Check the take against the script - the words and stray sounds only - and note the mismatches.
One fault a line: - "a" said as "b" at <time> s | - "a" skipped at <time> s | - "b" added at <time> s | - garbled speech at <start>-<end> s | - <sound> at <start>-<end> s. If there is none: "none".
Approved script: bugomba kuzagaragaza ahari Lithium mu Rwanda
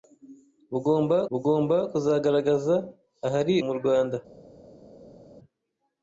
- "bugomba" added at 1.3 s
- "Lithium" skipped at 3.5 s